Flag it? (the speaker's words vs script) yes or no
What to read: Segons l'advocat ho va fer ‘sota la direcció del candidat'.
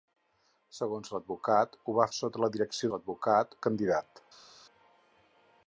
yes